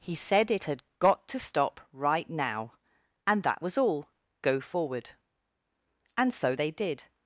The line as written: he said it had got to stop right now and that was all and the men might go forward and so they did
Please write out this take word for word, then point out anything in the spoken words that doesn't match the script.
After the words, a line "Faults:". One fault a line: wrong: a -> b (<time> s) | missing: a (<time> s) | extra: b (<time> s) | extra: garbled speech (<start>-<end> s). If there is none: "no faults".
he said it had got to stop right now and that was all go forward and so they did
Faults:
missing: and the men might (4.1 s)